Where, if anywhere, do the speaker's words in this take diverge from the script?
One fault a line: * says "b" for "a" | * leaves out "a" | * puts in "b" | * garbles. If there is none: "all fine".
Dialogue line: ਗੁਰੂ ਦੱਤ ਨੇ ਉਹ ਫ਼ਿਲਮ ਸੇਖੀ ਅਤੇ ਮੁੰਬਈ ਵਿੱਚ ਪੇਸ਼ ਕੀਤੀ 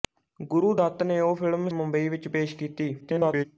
* leaves out "ਸੇਖੀ ਅਤੇ"
* garbles